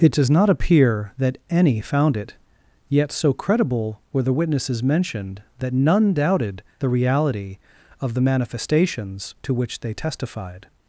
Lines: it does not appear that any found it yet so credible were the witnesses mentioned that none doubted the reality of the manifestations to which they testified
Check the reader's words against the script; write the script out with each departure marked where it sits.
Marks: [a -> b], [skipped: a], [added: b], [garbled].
it does not appear that any found it yet so credible were the witnesses mentioned that none doubted the reality of the manifestations to which they testified